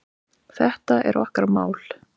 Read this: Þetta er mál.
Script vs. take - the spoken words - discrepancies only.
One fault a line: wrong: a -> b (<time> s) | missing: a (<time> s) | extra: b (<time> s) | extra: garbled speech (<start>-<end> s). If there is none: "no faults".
extra: okkar (1.3 s)